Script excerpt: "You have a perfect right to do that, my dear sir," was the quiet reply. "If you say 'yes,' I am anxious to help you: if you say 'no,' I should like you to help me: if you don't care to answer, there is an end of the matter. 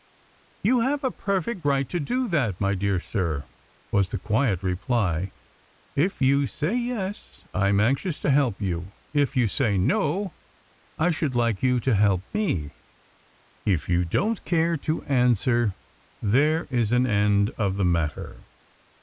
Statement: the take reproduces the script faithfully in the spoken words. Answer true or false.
true